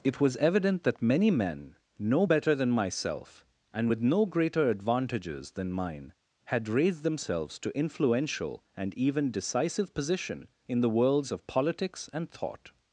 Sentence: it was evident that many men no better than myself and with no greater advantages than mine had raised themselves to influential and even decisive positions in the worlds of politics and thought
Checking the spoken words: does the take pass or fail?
fail